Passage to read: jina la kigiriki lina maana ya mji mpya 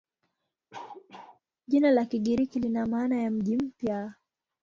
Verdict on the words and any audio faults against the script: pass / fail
fail